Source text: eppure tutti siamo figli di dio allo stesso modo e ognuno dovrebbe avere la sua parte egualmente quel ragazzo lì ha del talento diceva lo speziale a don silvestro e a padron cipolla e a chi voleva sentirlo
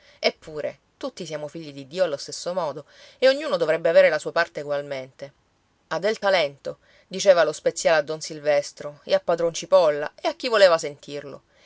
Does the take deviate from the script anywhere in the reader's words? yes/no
yes